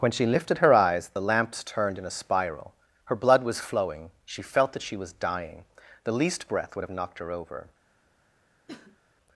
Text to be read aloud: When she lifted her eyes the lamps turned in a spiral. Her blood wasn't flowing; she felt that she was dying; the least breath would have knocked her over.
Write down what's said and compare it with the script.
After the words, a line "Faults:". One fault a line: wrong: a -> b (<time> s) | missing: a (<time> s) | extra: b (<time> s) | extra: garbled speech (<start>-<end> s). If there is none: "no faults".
When she lifted her eyes the lamps turned in a spiral. Her blood was flowing; she felt that she was dying; the least breath would have knocked her over.
Faults:
wrong: wasn't -> was (3.4 s)